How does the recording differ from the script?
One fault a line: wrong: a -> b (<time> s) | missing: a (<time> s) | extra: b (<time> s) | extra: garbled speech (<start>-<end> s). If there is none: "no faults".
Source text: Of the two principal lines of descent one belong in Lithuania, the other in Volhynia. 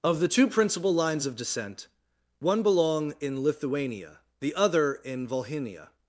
no faults